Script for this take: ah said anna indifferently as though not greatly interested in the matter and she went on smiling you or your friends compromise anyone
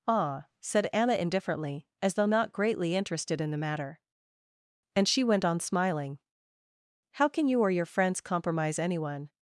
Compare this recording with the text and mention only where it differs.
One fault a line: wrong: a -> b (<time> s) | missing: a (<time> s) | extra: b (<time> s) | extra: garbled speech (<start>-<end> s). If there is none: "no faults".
extra: how can (7.1 s)